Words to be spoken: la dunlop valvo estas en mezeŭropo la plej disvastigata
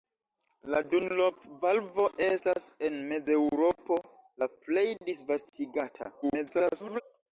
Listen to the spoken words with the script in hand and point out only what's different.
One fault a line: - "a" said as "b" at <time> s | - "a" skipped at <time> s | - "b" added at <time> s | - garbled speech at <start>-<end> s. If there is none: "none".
- garbled speech at 6.2-7.0 s